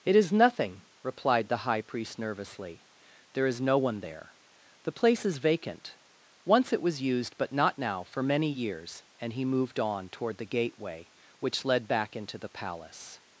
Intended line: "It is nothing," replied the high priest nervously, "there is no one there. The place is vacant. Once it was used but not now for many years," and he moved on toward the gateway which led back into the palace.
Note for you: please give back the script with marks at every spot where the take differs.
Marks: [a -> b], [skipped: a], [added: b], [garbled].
"It is nothing," replied the high priest nervously, "there is no one there. The place is vacant. Once it was used but not now for many years," and he moved on toward the gateway which led back into the palace.